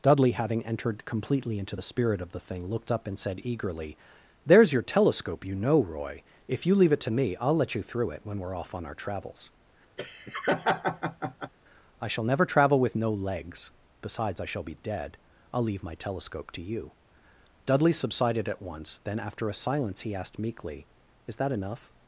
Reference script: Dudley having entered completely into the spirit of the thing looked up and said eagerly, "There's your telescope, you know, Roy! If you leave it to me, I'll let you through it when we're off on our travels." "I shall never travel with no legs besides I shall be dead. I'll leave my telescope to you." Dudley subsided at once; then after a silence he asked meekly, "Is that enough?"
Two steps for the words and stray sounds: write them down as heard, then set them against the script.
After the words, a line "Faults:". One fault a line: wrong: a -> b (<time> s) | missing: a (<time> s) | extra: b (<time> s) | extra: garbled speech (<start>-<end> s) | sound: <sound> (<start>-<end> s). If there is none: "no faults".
Dudley having entered completely into the spirit of the thing looked up and said eagerly, "There's your telescope, you know, Roy! If you leave it to me, I'll let you through it when we're off on our travels." "I shall never travel with no legs besides I shall be dead. I'll leave my telescope to you." Dudley subsided at once; then after a silence he asked meekly, "Is that enough?"
Faults:
sound: laugh (10.0-11.5 s)